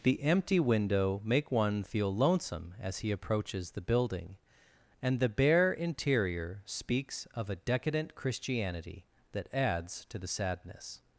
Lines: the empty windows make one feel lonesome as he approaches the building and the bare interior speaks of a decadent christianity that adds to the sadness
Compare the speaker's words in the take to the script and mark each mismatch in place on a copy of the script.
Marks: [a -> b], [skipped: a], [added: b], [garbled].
the empty [windows -> window] make one feel lonesome as he approaches the building and the bare interior speaks of a decadent christianity that adds to the sadness